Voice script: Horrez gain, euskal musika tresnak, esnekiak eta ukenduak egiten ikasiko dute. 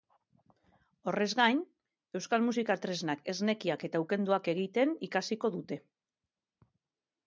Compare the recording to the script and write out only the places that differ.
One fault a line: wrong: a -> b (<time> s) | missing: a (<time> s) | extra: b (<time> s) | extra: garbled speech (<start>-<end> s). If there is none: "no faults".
no faults